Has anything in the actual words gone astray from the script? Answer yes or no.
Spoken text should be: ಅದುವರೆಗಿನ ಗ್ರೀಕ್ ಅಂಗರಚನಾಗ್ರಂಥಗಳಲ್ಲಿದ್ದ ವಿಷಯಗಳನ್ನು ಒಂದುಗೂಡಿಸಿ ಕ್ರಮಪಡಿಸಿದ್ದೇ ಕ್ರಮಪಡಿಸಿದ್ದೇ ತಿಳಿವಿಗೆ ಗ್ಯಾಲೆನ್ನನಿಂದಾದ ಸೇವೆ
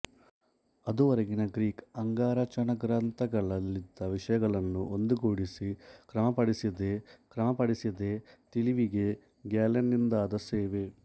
no